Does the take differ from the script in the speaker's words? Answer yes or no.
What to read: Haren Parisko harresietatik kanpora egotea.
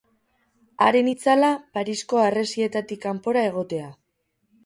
yes